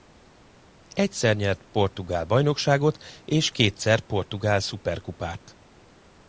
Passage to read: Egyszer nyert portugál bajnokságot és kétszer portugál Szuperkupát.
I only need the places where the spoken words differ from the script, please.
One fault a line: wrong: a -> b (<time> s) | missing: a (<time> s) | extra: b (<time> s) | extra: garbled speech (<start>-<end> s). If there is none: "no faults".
no faults